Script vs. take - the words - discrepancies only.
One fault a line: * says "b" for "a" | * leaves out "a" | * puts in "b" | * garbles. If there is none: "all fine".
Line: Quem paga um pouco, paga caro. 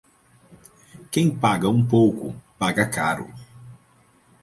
all fine